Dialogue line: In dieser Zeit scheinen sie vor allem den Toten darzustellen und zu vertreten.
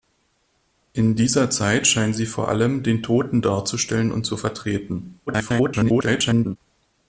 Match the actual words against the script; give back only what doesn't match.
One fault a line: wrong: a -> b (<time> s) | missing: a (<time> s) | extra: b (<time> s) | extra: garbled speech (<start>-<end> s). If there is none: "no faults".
extra: garbled speech (5.3-6.6 s)